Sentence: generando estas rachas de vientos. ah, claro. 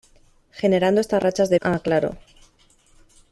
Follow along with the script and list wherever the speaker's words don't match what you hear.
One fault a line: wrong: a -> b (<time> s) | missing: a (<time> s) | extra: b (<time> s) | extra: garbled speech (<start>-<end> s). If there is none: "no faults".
missing: vientos (1.6 s)